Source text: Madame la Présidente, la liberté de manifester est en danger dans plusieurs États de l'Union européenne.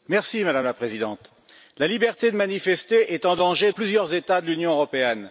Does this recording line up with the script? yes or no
no